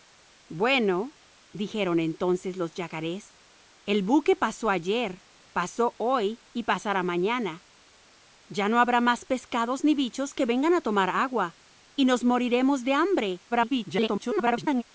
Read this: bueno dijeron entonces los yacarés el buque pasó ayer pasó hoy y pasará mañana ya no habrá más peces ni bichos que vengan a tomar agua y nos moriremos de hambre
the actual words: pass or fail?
fail